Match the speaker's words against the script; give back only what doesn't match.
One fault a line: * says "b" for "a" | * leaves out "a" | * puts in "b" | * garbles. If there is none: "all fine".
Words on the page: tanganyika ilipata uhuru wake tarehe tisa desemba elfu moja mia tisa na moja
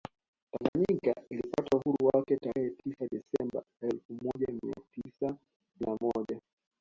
all fine